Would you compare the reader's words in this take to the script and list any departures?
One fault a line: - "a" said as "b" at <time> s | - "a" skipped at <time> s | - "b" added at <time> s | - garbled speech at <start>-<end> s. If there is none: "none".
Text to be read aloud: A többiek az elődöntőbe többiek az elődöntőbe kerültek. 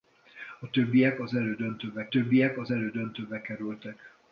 none